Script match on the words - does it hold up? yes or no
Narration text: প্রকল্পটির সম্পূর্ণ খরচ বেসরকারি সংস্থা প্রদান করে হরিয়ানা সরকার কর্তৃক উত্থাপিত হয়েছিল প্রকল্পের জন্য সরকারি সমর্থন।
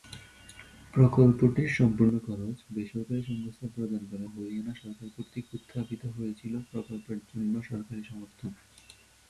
yes